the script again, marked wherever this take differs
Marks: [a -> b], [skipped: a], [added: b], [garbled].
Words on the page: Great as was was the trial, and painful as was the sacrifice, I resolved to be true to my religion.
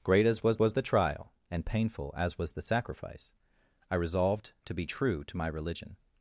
Great as was was the trial, and painful as was the sacrifice, I resolved to be true to my religion.